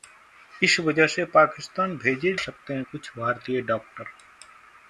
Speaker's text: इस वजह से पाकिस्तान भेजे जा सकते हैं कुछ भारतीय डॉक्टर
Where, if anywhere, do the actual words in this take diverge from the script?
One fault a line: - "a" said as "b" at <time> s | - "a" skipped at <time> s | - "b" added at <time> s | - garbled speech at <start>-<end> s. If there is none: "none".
- "जा" skipped at 2.3 s